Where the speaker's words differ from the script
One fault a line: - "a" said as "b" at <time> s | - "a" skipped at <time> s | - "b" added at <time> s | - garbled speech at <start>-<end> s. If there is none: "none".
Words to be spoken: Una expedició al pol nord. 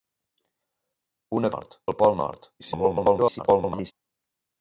- "expedició" said as "nord" at 1.5 s
- garbled speech at 2.6-3.9 s